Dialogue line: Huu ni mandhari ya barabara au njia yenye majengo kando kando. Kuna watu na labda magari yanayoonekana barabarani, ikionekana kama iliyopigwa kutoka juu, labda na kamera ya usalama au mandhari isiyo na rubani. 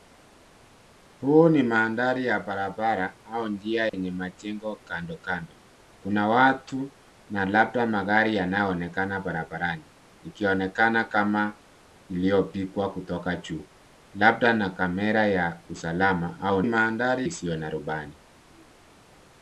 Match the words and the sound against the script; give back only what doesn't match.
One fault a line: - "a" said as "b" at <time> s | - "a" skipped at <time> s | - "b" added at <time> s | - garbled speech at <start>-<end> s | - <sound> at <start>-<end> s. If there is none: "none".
- dropout at 3.9-3.9 s